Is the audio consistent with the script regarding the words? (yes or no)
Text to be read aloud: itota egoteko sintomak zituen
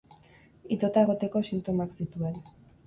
yes